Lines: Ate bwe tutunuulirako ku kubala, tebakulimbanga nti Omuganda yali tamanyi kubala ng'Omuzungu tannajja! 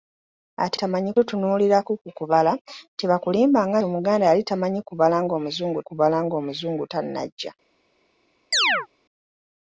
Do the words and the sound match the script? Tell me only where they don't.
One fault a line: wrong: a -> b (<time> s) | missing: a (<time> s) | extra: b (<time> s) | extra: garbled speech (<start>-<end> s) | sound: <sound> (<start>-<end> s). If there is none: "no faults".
wrong: bwe -> tamanyi (0.8 s)
missing: nti (3.8 s)
extra: kubala ng'Omuzungu (5.9 s)
sound: chirp (8.5-8.9 s)